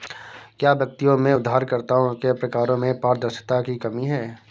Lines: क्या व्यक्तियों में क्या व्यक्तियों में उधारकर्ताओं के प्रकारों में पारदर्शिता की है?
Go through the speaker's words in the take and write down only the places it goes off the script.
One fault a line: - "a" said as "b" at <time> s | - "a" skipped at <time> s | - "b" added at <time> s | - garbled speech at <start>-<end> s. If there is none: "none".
- "क्या व्यक्तियों में" skipped at 1.3 s
- "कमी" added at 3.7 s